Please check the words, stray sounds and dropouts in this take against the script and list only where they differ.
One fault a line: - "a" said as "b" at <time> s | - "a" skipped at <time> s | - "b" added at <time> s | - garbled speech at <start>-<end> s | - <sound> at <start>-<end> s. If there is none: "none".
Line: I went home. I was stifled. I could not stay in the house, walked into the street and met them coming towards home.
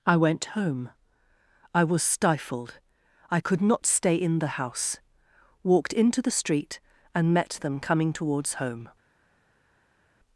none